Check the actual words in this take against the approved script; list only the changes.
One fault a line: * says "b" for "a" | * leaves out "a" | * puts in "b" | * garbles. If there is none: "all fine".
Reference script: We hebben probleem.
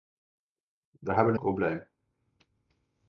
all fine